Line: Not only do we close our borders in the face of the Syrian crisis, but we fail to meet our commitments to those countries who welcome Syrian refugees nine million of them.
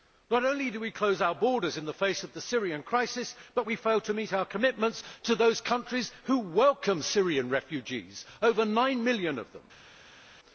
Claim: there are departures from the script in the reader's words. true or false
true